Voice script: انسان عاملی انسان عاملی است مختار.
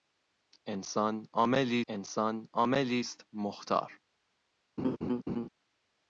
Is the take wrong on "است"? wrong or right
right